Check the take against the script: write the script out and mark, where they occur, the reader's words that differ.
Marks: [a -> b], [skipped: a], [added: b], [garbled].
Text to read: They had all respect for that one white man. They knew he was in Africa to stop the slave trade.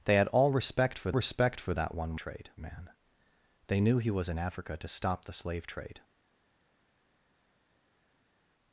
They had all respect for [added: respect for] that one [white -> trade] man. They knew he was in Africa to stop the slave trade.